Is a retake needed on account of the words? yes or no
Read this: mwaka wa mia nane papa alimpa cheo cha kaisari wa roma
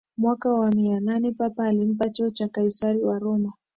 no